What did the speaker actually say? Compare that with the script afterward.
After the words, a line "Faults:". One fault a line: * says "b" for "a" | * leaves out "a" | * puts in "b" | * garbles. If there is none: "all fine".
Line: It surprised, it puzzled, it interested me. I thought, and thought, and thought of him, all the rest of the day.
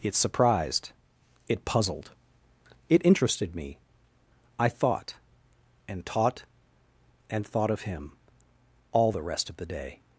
It surprised, it puzzled, it interested me. I thought, and taught, and thought of him, all the rest of the day.
Faults:
* says "taught" for "thought"